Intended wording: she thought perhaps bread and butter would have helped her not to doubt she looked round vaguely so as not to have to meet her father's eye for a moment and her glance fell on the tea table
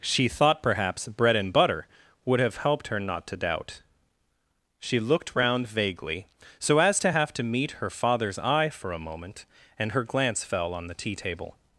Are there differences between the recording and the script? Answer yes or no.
yes